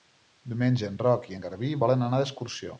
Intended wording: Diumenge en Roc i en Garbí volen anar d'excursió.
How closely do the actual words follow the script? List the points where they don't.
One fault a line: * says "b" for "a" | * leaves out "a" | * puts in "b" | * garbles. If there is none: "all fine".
all fine